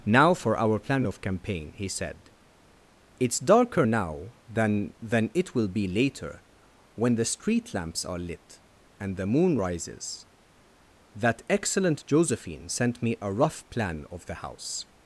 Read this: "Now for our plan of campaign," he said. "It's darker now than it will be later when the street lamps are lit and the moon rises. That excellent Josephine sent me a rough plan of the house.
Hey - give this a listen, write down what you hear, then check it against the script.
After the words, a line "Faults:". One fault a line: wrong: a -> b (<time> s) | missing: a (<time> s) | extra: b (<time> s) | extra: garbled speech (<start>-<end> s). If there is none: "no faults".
"Now for our plan of campaign," he said. "It's darker now than than it will be later when the street lamps are lit and the moon rises. That excellent Josephine sent me a rough plan of the house.
Faults:
extra: than (5.0 s)